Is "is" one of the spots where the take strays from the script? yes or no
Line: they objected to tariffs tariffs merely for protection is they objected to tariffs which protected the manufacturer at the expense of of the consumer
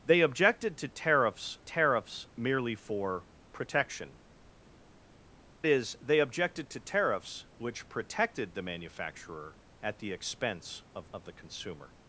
no